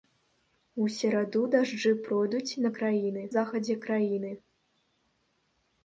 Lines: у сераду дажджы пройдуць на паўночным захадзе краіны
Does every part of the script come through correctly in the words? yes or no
no